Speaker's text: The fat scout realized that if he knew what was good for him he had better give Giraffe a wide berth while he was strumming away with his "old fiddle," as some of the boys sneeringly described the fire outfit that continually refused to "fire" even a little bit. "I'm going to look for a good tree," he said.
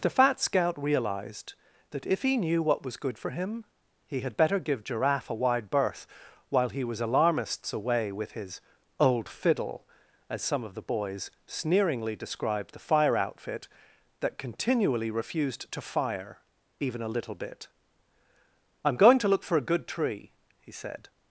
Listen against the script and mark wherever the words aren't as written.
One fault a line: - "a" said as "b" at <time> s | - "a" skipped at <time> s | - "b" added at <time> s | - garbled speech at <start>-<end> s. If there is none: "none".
- "strumming" said as "alarmists" at 7.0 s